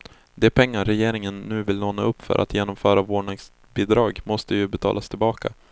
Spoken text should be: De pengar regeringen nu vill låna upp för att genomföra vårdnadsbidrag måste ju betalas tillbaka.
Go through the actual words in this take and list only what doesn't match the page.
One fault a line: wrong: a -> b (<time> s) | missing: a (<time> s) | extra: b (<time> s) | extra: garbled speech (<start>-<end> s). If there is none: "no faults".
no faults